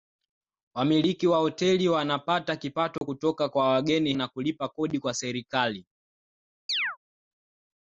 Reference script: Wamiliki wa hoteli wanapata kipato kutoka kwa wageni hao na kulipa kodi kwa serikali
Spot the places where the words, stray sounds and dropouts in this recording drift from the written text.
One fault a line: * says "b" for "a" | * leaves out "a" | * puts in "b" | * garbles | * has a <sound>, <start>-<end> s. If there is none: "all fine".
* has a dropout, 3.0-3.0 s
* leaves out "hao"
* has a chirp, 6.7-7.0 s